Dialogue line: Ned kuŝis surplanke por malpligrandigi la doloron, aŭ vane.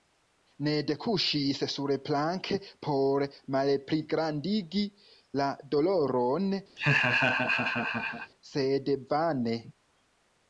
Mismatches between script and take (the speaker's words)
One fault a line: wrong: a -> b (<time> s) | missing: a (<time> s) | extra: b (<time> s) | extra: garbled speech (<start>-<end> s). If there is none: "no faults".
wrong: aŭ -> sed (8.5 s)